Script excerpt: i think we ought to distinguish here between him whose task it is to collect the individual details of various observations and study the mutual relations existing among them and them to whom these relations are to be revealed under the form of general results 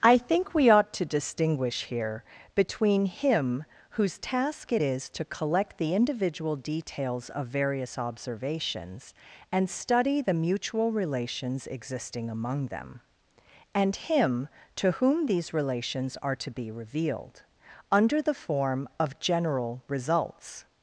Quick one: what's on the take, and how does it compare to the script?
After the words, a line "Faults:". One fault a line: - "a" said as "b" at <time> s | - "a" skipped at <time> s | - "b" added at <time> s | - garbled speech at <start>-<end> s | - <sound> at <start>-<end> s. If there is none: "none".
i think we ought to distinguish here between him whose task it is to collect the individual details of various observations and study the mutual relations existing among them and him to whom these relations are to be revealed under the form of general results
Faults:
- "them" said as "him" at 14.0 s